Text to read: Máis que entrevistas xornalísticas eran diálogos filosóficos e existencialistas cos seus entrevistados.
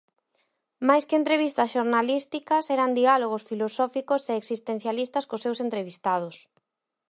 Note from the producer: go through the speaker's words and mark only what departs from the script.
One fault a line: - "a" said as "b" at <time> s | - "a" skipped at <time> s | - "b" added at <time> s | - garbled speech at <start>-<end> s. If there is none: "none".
none